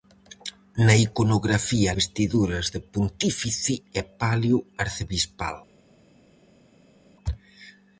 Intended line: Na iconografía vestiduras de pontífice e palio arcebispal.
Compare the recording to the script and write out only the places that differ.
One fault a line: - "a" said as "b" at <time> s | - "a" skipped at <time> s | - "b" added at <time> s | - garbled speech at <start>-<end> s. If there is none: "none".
none